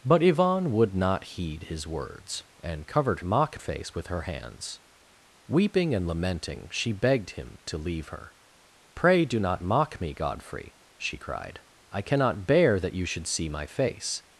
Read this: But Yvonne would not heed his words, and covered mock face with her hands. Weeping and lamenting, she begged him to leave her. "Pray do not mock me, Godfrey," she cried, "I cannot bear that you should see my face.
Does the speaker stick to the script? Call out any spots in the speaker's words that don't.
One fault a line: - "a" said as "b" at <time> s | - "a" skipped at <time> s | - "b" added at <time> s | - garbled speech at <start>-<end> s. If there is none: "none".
none